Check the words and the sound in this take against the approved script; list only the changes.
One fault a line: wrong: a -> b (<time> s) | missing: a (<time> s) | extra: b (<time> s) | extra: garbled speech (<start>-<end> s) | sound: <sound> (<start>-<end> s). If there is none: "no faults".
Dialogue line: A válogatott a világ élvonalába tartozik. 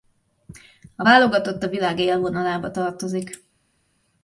no faults